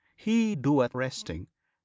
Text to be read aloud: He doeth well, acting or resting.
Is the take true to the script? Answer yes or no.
no